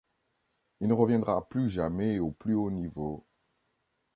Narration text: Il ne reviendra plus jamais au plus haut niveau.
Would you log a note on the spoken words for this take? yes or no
no